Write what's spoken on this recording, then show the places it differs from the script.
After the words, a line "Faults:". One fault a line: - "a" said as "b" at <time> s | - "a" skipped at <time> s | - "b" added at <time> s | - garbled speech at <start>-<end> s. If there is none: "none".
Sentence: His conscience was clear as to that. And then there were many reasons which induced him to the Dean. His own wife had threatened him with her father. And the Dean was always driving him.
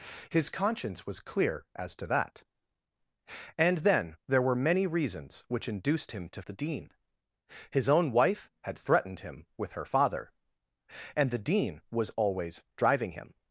His conscience was clear as to that. And then there were many reasons which induced him to the Dean. His own wife had threatened him with her father. And the Dean was always driving him.
Faults:
none